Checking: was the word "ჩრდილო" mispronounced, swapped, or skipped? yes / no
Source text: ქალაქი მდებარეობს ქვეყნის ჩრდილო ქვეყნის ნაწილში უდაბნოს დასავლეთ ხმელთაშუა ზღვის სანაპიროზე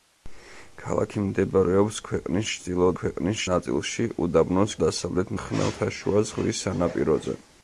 no